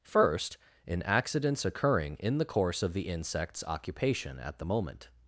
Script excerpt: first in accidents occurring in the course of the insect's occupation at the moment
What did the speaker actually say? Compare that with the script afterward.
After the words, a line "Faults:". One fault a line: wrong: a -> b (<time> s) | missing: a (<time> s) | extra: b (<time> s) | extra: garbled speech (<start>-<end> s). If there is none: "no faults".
first in accidents occurring in the course of the insect's occupation at the moment
Faults:
no faults